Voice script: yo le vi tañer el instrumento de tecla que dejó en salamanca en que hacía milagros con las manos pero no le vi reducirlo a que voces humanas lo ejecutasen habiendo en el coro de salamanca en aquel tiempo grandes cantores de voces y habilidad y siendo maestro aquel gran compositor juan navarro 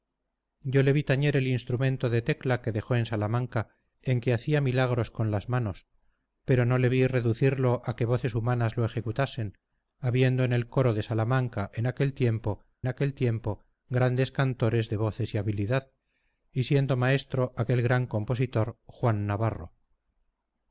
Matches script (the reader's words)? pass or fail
fail